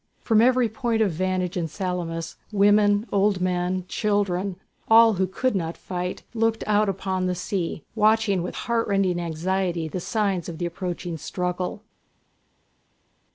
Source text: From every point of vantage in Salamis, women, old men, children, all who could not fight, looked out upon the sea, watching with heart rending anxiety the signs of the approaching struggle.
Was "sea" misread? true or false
false